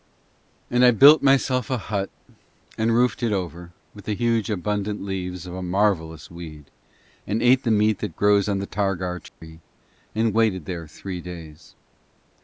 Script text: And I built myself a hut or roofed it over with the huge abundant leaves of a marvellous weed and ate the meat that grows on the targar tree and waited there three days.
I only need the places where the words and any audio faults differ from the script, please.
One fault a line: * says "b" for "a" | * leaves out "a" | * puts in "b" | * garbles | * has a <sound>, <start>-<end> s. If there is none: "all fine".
* says "and" for "or"
* has a dropout, 9.3-9.4 s